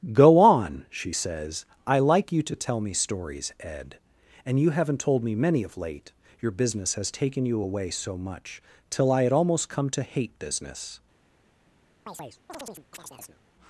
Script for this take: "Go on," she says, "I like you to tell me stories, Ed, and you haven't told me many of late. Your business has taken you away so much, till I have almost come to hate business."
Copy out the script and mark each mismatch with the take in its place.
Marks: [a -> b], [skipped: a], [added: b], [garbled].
"Go on," she says, "I like you to tell me stories, Ed, and you haven't told me many of late. Your business has taken you away so much, till I [have -> had] almost come to hate business."